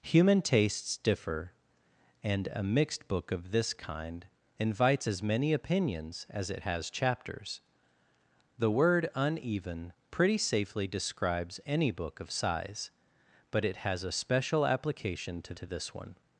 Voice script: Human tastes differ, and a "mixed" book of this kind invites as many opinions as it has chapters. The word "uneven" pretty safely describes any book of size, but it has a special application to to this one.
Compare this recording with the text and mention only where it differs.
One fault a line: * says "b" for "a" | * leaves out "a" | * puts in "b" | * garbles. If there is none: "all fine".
all fine